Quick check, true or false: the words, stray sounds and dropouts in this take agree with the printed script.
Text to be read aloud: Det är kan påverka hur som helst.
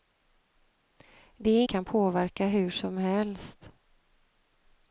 true